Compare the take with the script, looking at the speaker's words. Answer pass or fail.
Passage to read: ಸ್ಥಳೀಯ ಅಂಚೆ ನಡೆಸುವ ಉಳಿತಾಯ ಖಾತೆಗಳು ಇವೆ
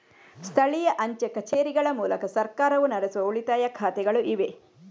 fail